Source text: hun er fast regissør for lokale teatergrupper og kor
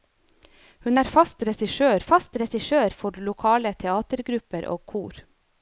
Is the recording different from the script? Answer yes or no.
yes